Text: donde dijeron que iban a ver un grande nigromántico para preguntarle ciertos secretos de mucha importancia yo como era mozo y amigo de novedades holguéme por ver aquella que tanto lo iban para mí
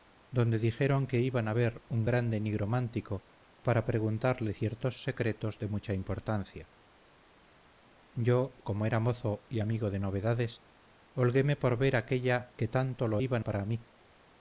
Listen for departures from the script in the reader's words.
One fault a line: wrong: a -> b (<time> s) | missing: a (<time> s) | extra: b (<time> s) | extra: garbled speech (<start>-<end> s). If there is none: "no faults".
no faults